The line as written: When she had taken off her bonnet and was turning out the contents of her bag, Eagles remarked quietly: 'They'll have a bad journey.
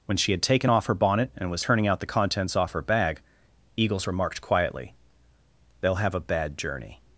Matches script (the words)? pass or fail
fail